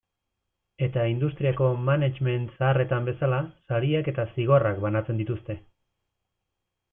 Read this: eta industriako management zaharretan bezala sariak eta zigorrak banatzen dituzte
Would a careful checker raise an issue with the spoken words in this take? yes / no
no